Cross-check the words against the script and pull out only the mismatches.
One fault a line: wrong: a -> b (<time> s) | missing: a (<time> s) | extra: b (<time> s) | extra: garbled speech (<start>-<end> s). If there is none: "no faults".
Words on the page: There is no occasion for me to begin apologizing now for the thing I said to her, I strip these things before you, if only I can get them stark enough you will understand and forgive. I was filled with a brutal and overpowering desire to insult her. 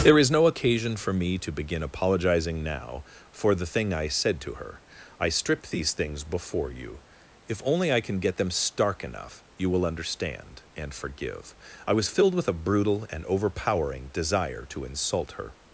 no faults